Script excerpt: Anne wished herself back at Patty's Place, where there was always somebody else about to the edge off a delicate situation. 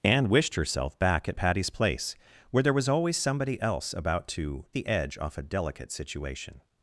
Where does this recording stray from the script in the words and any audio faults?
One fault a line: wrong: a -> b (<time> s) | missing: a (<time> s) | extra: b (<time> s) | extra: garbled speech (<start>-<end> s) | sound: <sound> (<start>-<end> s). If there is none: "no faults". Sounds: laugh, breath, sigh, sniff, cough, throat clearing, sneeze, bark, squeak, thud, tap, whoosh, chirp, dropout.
no faults